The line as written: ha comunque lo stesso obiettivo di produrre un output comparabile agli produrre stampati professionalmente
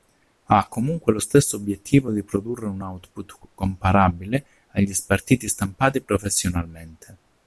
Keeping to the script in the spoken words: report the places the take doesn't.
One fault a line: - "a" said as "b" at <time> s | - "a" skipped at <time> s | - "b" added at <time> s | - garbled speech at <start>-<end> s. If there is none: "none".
- "produrre" said as "spartiti" at 4.9 s